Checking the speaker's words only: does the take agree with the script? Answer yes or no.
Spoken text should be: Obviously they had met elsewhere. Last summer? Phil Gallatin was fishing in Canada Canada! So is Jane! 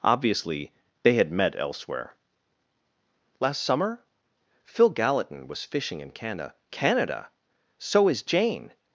yes